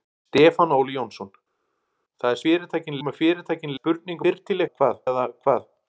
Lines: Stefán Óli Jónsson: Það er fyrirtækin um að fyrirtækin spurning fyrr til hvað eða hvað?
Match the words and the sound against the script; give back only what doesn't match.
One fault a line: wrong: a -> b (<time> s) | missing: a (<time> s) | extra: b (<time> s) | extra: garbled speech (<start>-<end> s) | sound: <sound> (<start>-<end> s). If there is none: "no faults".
no faults